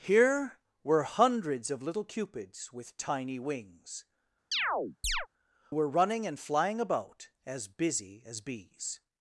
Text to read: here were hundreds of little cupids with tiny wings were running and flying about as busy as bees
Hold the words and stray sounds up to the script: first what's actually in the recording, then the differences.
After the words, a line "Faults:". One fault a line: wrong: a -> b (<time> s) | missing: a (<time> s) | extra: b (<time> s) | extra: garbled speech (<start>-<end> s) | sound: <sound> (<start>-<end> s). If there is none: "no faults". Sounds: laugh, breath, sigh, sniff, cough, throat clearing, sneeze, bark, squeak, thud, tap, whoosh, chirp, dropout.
here were hundreds of little cupids with tiny wings were running and flying about as busy as bees
Faults:
sound: chirp (4.5-5.3 s)